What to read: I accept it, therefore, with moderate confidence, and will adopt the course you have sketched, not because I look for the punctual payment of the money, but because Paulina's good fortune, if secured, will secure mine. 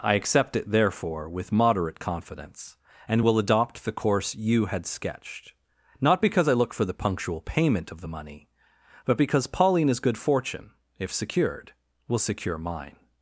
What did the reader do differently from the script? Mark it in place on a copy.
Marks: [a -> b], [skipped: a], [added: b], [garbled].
I accept it, therefore, with moderate confidence, and will adopt the course you [have -> had] sketched, not because I look for the punctual payment of the money, but because Paulina's good fortune, if secured, will secure mine.